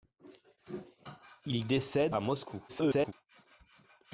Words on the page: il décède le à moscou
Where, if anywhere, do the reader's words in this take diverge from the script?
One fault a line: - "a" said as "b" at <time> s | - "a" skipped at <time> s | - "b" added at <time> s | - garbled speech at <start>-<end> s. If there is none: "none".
- "le" skipped at 2.2 s
- garbled speech at 2.7-3.1 s